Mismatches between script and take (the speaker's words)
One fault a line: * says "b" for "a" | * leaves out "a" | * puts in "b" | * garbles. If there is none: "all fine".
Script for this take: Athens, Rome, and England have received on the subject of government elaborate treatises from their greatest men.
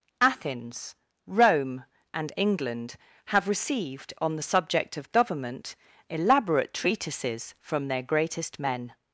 all fine